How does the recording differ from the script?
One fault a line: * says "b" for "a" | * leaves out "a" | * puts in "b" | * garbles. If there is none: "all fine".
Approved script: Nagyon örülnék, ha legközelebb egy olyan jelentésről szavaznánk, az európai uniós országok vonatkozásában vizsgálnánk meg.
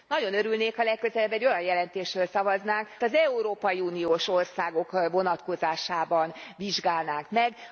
all fine